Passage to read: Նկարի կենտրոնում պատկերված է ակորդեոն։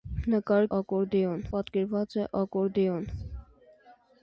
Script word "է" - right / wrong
right